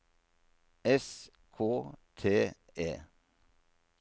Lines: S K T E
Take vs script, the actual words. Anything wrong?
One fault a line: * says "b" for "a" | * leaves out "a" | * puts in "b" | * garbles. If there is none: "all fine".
all fine